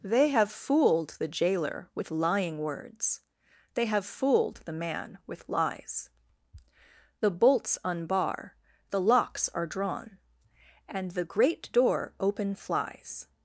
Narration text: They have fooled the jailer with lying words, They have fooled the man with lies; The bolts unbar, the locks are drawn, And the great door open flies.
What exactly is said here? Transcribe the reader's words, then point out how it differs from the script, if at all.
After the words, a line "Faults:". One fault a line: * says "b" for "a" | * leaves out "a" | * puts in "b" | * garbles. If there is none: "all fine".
They have fooled the jailer with lying words, They have fooled the man with lies; The bolts unbar, the locks are drawn, And the great door open flies.
Faults:
all fine